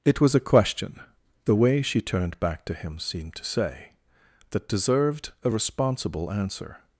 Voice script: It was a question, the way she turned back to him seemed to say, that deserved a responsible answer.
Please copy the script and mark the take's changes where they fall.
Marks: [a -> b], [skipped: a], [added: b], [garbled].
It was a question, the way she turned back to him seemed to say, that deserved a responsible answer.